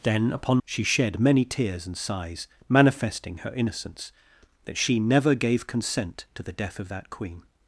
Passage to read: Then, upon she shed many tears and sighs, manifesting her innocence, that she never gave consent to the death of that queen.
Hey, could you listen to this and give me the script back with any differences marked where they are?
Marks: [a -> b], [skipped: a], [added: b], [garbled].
Then, upon she shed many tears and sighs, manifesting her innocence, that she never gave consent to the death of that queen.